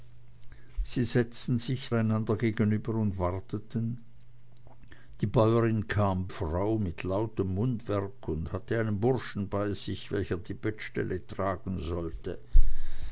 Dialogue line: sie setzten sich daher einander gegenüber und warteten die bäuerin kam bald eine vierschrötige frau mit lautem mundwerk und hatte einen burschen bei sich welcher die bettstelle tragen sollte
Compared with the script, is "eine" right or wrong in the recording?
wrong